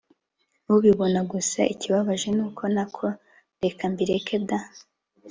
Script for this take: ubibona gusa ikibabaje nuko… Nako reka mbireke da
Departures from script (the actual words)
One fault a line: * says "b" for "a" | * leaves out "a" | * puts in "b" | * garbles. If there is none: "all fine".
all fine